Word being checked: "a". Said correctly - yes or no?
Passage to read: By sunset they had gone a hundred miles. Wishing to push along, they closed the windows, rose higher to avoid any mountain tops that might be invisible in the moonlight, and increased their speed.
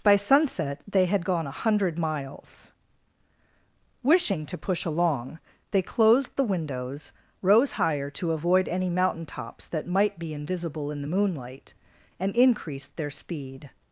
yes